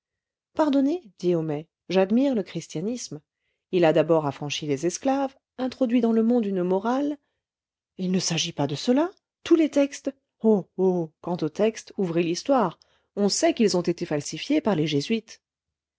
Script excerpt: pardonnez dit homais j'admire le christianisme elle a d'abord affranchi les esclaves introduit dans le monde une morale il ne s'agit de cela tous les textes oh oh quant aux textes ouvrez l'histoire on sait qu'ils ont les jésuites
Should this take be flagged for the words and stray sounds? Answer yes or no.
yes